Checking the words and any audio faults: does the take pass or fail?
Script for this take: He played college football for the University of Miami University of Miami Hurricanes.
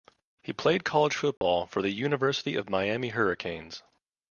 fail